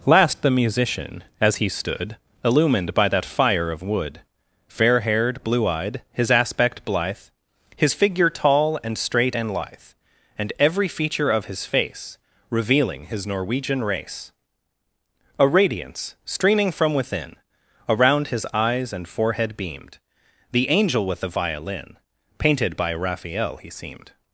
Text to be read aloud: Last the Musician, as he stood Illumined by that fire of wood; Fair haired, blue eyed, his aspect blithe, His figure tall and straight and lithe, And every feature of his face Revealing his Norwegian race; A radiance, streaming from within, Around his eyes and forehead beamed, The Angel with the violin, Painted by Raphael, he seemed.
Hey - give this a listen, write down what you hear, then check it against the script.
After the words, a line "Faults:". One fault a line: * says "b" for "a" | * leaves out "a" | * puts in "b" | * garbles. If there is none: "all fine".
Last the Musician, as he stood Illumined by that fire of wood; Fair haired, blue eyed, his aspect blithe, His figure tall and straight and lithe, And every feature of his face Revealing his Norwegian race; A radiance, streaming from within, Around his eyes and forehead beamed, The Angel with the violin, Painted by Raphael, he seemed.
Faults:
all fine